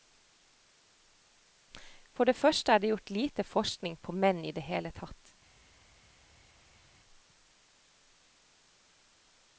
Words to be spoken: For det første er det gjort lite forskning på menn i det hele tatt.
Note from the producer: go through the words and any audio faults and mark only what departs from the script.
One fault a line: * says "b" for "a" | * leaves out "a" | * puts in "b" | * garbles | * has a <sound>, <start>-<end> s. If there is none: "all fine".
all fine